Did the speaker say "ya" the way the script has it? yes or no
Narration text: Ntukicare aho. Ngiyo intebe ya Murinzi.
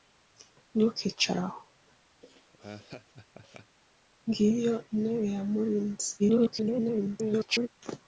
yes